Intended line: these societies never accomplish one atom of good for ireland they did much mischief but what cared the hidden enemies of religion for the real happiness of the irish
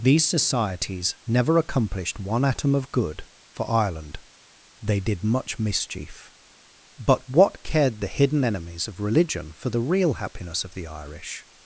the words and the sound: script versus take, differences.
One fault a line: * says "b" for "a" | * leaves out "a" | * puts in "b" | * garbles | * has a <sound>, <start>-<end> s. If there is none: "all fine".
* says "accomplished" for "accomplish"